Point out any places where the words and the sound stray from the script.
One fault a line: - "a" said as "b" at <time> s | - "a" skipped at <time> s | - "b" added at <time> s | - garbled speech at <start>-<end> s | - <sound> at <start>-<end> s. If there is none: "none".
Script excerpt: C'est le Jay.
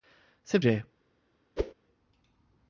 - whoosh at 1.6-1.7 s